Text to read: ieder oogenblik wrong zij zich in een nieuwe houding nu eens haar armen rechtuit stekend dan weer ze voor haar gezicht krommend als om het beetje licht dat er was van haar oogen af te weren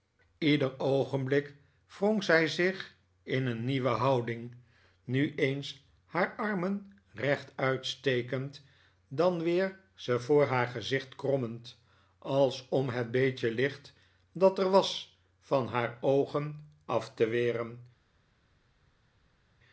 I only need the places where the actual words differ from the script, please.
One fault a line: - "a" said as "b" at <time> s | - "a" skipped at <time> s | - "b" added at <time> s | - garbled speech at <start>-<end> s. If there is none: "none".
none